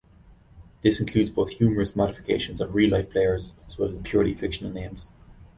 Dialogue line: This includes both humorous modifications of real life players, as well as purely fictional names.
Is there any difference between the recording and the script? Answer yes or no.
no